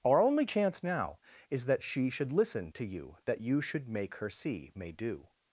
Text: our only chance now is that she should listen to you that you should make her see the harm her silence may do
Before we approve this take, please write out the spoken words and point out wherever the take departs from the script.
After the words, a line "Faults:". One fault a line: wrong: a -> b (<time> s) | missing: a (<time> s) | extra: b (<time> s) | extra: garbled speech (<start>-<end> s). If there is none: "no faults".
our only chance now is that she should listen to you that you should make her see may do
Faults:
missing: the harm her silence (4.7 s)